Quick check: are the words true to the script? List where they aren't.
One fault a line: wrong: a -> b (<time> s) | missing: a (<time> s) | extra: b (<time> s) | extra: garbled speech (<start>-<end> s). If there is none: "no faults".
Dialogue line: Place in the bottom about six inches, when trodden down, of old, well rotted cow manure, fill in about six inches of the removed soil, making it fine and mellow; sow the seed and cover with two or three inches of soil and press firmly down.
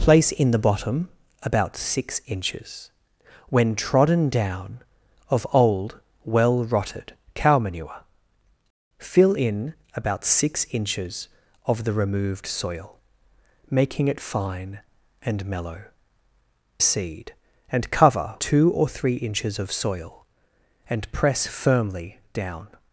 missing: sow the (15.8 s)
missing: with (18.4 s)